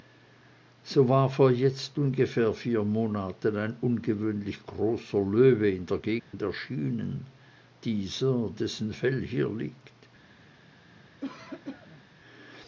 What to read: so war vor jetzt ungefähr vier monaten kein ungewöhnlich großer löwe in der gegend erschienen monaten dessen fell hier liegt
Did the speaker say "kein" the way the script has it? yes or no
no